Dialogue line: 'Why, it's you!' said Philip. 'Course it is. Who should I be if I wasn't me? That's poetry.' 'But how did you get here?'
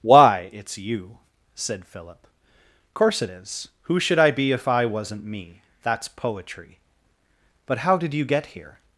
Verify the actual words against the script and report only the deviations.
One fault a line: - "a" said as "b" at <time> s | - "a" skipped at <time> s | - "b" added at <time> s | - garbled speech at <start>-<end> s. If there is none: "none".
none